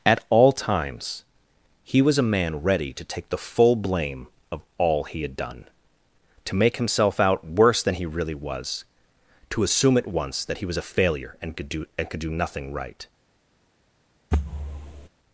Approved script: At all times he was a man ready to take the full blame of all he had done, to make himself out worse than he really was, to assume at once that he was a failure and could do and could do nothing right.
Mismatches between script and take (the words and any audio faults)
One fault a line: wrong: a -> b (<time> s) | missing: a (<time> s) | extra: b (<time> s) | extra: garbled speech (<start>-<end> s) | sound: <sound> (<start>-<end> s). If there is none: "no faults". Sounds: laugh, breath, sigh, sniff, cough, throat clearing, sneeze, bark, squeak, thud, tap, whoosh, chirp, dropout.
sound: thud (14.3-15.1 s)